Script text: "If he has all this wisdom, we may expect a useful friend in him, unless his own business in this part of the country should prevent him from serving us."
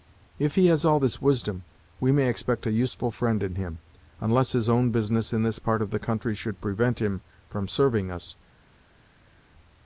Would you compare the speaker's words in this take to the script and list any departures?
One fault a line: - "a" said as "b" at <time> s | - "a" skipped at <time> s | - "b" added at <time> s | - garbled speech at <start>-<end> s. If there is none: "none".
none